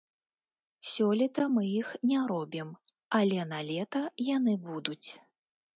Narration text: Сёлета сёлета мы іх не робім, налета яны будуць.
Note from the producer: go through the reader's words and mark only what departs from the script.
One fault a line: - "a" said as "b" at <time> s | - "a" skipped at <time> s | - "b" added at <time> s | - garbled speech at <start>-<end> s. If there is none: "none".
- "сёлета" skipped at 1.4 s
- "але" added at 3.2 s